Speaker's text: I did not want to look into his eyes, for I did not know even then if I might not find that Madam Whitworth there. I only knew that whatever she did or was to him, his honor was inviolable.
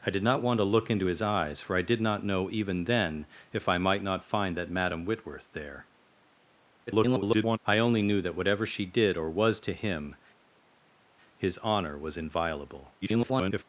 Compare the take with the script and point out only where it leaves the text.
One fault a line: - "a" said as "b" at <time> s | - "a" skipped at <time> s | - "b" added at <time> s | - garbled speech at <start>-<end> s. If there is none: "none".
- garbled speech at 6.9-7.6 s
- garbled speech at 13.0-13.6 s